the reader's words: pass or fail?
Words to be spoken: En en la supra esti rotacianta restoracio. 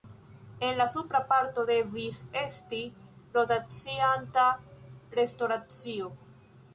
fail